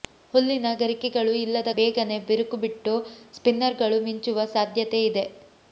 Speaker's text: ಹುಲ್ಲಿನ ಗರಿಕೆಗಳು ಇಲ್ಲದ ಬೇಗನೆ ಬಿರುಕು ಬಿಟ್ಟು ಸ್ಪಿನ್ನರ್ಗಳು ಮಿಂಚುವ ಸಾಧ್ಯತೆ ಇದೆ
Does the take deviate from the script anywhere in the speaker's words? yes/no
no